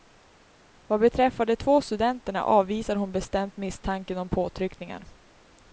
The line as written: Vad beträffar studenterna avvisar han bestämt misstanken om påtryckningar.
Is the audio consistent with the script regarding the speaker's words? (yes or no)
no